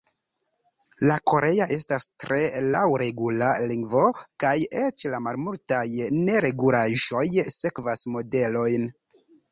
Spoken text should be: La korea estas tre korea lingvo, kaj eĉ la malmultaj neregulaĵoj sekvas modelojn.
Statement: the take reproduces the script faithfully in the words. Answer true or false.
false